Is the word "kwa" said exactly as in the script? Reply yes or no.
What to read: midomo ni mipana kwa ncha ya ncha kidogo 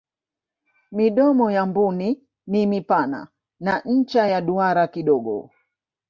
no